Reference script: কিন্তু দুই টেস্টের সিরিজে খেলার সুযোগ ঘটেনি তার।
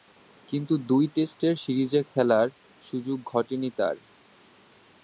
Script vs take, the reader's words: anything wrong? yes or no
no